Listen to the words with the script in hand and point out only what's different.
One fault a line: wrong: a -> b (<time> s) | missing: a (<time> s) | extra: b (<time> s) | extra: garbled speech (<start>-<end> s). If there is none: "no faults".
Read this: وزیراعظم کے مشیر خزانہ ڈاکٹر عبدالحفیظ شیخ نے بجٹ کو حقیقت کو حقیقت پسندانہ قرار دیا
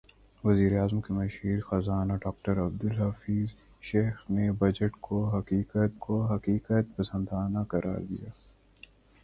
no faults